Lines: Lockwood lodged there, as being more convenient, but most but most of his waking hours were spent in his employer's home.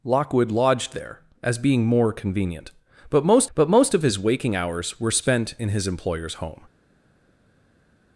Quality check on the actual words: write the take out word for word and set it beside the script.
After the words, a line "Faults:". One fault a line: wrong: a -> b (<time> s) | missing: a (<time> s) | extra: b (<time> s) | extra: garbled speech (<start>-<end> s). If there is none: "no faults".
Lockwood lodged there, as being more convenient, but most but most of his waking hours were spent in his employer's home.
Faults:
no faults